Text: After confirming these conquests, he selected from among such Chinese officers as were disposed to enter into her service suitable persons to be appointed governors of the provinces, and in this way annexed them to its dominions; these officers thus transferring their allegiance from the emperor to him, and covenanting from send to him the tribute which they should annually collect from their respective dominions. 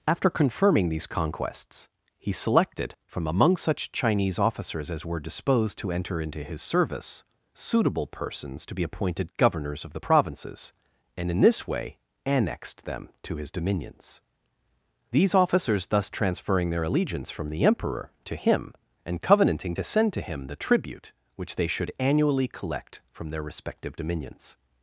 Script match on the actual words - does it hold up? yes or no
no